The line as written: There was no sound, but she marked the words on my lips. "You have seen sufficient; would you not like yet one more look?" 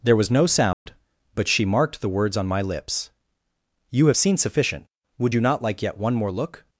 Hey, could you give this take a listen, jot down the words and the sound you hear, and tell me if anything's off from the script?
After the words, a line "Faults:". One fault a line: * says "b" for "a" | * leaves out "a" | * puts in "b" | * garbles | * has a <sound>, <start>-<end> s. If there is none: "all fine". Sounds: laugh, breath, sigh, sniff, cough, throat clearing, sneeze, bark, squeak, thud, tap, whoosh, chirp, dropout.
There was no sound, but she marked the words on my lips. "You have seen sufficient; would you not like yet one more look?"
Faults:
* has a dropout, 0.7-0.9 s